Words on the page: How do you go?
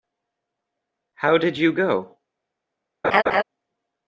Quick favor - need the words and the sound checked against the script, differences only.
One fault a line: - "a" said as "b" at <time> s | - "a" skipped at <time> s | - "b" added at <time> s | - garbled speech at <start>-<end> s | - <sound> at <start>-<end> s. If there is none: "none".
- "do" said as "did" at 1.4 s
- laugh at 3.0-3.4 s